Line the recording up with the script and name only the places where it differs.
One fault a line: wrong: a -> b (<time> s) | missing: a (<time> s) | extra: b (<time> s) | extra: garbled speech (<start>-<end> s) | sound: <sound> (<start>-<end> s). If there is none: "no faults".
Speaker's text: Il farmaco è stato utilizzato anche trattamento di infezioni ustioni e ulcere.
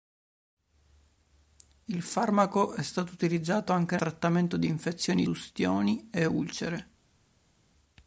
no faults